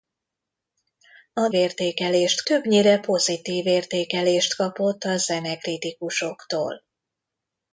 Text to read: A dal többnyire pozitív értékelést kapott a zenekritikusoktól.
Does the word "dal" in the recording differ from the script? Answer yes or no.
yes